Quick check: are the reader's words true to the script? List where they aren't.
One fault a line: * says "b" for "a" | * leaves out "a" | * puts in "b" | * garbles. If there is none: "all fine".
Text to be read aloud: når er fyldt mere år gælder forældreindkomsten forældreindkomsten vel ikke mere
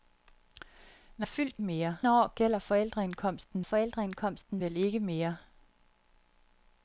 all fine